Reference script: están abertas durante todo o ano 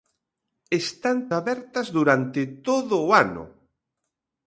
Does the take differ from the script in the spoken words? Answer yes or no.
no